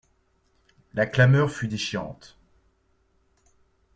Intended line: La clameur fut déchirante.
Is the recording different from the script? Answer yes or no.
no